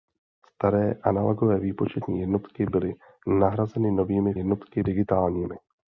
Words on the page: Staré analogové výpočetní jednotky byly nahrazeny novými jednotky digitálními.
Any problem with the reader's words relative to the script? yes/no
no